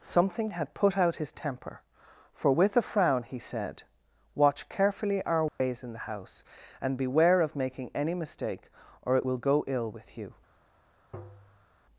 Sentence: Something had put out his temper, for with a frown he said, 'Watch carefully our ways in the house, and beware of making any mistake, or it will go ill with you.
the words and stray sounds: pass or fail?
fail